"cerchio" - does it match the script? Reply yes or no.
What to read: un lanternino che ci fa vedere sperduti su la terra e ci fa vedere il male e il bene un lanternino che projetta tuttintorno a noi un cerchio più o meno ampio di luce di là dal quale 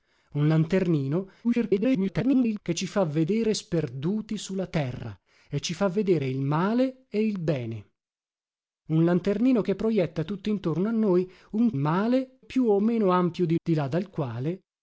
no